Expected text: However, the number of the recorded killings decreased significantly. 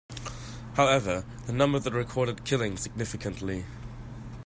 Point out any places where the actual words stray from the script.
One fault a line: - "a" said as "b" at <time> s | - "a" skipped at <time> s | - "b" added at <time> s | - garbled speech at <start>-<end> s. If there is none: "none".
- "decreased" skipped at 2.9 s